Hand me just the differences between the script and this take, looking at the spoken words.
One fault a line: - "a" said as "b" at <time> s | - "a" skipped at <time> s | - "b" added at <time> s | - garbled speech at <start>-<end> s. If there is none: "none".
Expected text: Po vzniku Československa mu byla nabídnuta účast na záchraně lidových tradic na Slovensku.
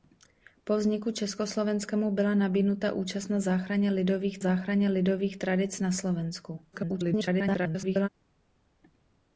- "záchraně lidových" added at 4.4 s
- garbled speech at 6.7-8.1 s